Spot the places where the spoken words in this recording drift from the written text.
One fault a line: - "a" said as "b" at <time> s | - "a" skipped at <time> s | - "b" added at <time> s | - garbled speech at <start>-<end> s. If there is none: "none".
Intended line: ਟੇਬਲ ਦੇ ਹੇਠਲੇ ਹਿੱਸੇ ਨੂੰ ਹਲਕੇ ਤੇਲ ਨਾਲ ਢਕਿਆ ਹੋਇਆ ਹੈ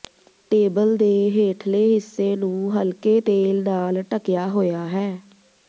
none